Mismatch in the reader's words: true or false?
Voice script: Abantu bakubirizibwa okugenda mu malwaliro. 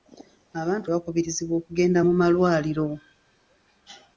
false